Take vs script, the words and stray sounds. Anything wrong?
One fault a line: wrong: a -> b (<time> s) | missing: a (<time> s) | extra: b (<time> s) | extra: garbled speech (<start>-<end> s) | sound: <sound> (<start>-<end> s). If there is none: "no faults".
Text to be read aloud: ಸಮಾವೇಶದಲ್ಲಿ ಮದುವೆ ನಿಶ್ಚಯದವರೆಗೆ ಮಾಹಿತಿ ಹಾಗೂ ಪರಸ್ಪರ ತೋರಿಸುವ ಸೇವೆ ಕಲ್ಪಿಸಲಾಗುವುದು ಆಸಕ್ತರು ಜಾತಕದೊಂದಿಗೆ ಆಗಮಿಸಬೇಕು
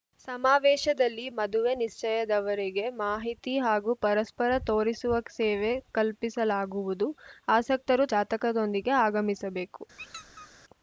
sound: squeak (10.0-10.5 s)